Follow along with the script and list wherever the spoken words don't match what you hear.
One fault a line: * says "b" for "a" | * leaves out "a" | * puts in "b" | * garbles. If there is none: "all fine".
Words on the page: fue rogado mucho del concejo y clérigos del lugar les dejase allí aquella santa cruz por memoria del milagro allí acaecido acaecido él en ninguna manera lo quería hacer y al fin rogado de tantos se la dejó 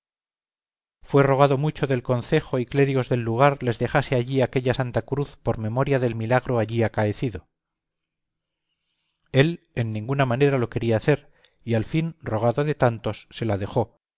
* leaves out "acaecido"